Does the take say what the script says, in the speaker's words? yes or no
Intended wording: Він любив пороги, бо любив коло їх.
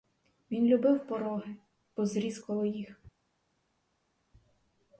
no